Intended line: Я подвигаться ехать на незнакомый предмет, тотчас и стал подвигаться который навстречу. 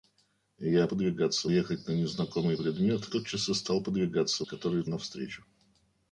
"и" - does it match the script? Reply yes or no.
yes